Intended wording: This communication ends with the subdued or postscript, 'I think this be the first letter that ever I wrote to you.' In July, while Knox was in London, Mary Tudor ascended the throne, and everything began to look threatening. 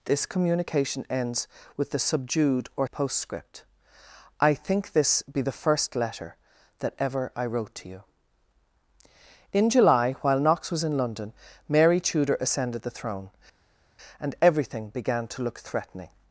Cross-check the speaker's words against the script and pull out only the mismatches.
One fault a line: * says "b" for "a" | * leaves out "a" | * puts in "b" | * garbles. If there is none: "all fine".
all fine